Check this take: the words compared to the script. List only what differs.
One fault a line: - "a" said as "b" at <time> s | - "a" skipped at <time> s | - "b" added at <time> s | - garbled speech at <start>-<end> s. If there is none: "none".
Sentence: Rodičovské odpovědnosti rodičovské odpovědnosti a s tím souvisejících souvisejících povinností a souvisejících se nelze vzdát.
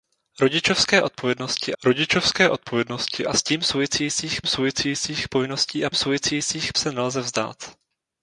none